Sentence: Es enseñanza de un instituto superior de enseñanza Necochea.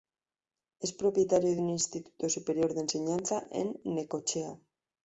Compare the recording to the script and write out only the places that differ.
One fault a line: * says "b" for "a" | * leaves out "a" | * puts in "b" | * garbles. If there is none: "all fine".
* says "propietario" for "enseñanza"
* puts in "en"